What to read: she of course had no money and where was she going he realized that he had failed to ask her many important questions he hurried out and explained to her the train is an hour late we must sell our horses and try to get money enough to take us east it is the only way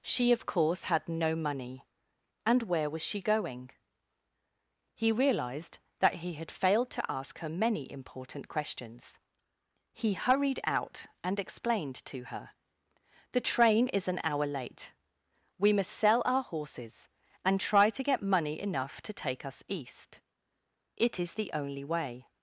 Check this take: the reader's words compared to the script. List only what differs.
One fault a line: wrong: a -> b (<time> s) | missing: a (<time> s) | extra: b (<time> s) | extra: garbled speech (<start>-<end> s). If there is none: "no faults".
no faults